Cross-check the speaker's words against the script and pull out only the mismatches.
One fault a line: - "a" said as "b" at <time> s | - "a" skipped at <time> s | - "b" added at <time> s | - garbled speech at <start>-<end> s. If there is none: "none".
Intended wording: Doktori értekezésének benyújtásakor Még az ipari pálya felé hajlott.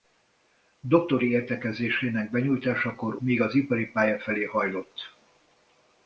none